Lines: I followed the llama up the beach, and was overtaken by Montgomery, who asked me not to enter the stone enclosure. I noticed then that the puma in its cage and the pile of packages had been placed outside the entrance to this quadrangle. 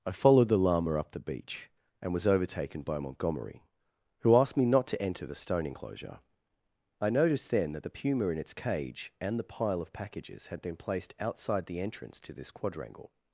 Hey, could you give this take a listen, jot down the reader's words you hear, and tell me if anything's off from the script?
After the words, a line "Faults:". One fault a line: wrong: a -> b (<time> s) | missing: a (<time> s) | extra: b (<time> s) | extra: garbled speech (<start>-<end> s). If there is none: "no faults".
I followed the llama up the beach, and was overtaken by Montgomery, who asked me not to enter the stone enclosure. I noticed then that the puma in its cage and the pile of packages had been placed outside the entrance to this quadrangle.
Faults:
no faults